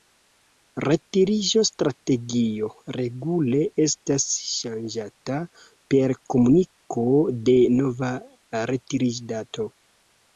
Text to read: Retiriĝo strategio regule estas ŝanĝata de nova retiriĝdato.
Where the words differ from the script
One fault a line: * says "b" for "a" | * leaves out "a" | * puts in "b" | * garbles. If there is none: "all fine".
* puts in "per komuniko"